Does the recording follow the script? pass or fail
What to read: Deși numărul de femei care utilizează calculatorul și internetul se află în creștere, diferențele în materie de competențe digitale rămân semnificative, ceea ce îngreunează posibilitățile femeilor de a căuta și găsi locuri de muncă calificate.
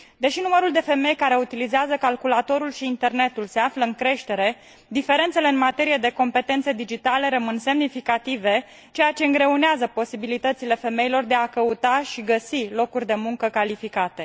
pass